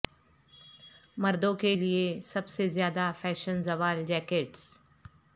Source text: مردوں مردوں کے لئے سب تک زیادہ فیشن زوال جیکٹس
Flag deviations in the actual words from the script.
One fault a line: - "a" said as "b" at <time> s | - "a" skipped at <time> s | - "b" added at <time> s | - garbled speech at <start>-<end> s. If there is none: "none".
- "مردوں" skipped at 1.5 s
- "تک" said as "سے" at 2.5 s